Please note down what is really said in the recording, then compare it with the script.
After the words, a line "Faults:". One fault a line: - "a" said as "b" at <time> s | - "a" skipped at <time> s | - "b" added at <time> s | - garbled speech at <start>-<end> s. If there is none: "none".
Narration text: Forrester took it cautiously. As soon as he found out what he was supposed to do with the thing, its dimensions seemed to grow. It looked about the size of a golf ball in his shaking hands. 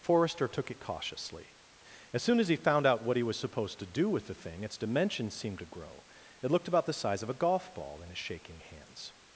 Forrester took it cautiously. As soon as he found out what he was supposed to do with the thing, its dimensions seemed to grow. It looked about the size of a golf ball in his shaking hands.
Faults:
none